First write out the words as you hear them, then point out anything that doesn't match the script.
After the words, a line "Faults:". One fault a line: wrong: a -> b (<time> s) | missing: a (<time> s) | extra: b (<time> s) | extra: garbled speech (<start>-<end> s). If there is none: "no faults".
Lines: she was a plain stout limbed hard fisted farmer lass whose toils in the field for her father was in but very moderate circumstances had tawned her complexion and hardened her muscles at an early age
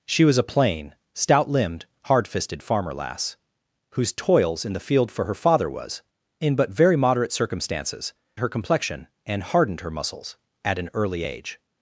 she was a plain stout limbed hard fisted farmer lass whose toils in the field for her father was in but very moderate circumstances her complexion and hardened her muscles at an early age
Faults:
missing: had tawned (8.1 s)